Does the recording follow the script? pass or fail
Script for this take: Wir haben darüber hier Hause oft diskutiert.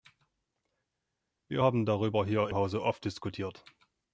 pass